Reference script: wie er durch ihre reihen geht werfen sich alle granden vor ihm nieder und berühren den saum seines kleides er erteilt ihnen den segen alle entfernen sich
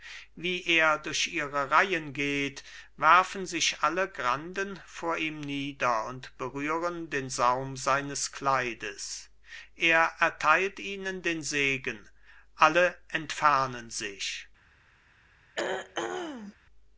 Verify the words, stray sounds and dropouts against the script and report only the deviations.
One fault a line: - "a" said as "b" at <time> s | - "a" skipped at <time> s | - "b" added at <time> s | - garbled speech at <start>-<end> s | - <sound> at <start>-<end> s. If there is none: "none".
- throat clearing at 15.5-16.6 s